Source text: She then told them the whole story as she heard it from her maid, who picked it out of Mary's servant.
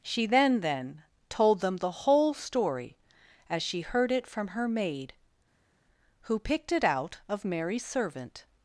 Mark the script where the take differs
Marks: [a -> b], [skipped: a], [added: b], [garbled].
She then [added: then] told them the whole story as she heard it from her maid, who picked it out of Mary's servant.